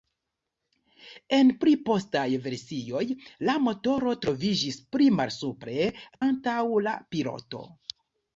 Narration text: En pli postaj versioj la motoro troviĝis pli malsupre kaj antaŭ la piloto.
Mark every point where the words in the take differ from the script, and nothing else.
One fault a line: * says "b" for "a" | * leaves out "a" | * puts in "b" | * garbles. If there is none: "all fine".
* leaves out "kaj"